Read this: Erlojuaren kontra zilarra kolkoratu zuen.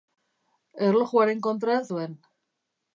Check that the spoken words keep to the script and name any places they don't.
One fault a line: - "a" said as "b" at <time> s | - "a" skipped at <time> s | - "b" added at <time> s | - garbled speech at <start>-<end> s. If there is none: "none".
- "zilarra kolkoratu" skipped at 1.8 s